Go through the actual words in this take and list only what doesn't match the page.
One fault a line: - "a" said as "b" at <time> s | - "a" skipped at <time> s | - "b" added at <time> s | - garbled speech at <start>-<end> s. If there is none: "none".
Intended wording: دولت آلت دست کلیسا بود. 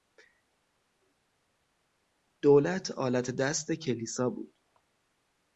none